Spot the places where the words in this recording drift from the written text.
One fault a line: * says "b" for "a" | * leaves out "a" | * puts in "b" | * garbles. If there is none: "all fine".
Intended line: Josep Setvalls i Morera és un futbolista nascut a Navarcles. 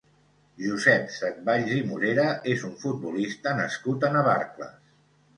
all fine